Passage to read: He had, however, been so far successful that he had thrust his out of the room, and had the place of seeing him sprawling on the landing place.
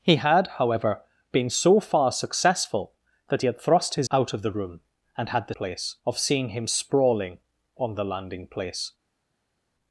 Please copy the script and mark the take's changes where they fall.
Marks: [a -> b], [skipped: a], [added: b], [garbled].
He had, however, been so far successful that he had thrust his out of the room, and had the place of seeing him sprawling on the landing place.